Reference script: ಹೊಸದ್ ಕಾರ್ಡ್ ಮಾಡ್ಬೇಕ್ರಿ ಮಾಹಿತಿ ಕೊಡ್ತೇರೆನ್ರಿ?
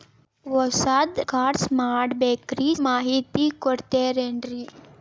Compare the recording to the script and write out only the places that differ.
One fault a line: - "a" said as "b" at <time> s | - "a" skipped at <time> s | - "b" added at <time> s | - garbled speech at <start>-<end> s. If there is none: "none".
none